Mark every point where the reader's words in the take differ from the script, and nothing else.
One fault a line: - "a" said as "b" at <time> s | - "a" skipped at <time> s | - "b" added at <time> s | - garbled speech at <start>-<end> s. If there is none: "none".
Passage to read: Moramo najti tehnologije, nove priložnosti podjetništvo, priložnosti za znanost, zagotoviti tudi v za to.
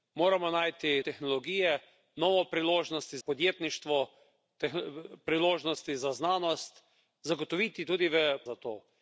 none